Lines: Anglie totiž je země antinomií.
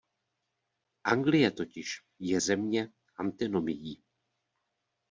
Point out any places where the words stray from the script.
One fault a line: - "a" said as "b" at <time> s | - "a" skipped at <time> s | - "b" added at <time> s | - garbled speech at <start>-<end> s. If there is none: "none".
none